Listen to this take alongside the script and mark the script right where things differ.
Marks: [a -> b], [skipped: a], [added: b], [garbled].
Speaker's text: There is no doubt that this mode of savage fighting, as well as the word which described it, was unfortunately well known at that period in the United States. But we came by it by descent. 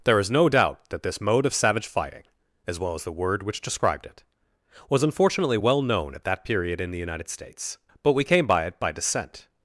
There is no doubt that this mode of savage fighting, as well as the word which described it, was unfortunately well known at that period in the United States. But we came by it by descent.